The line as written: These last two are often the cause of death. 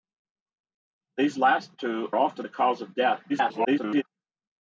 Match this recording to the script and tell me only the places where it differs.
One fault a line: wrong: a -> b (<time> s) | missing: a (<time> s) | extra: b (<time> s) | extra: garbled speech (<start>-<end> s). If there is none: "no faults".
missing: are (2.1 s)
extra: garbled speech (3.3-4.0 s)